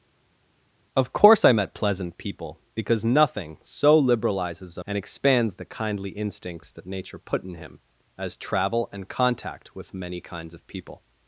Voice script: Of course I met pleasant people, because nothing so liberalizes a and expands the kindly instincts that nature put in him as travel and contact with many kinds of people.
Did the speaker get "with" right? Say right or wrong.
right